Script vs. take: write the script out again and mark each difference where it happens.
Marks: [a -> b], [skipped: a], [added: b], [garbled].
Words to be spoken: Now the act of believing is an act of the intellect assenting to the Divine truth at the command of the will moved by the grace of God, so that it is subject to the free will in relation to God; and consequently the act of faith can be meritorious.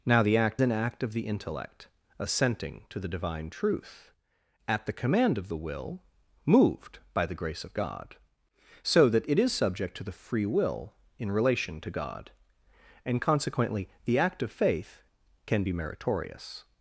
Now the act [skipped: of believing is] an act of the intellect assenting to the Divine truth at the command of the will moved by the grace of God, so that it is subject to the free will in relation to God; and consequently the act of faith can be meritorious.